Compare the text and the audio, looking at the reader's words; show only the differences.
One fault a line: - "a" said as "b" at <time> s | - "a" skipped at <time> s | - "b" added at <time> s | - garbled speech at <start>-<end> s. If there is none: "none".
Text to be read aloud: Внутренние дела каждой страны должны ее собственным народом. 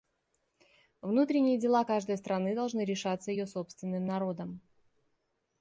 - "решаться" added at 2.8 s